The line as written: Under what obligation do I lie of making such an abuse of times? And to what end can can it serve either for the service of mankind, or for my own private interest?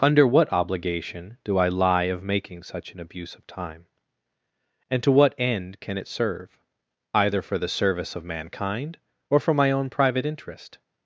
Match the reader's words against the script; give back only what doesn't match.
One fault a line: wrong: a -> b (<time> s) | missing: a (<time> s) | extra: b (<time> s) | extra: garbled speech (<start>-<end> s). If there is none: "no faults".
wrong: times -> time (3.5 s)
missing: can (6.0 s)